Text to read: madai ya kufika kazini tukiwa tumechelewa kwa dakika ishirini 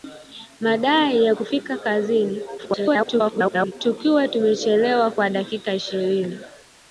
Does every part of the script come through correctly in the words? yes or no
no